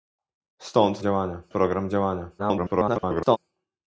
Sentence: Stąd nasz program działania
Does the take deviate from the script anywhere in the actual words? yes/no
yes